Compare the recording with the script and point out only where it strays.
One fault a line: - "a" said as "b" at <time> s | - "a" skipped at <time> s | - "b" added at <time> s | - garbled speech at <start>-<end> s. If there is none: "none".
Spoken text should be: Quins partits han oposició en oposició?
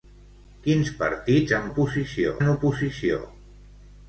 none